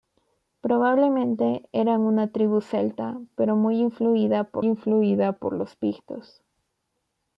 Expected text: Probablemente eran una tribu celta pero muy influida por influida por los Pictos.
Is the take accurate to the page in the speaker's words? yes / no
yes